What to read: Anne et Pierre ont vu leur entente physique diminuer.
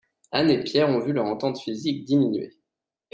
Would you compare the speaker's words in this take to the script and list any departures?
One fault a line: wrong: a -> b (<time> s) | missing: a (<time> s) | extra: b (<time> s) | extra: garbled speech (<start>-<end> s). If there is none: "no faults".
no faults